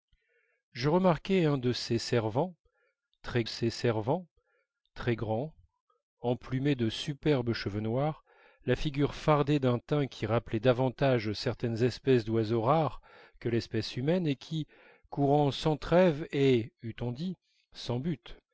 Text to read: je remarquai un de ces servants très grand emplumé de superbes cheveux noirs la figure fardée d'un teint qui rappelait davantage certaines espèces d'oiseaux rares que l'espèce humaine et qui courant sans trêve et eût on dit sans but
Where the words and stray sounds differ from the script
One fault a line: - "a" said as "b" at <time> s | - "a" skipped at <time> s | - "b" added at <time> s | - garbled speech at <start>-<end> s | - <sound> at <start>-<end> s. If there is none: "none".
- "ces servants très" added at 3.4 s